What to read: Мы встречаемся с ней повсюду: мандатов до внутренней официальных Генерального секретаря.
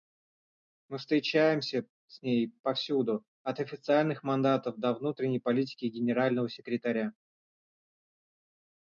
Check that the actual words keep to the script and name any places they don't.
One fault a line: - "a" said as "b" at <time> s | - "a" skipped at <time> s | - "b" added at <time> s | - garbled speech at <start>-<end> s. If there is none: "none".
- "от официальных" added at 3.4 s
- "официальных" said as "политики" at 5.4 s